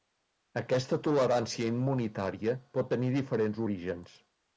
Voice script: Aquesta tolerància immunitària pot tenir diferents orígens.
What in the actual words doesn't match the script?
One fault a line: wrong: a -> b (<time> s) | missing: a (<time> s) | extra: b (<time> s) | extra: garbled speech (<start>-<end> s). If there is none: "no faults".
no faults